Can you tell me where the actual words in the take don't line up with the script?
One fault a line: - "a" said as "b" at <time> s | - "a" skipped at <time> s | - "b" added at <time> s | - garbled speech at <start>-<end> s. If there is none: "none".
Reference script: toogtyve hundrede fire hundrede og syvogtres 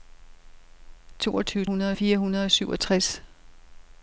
none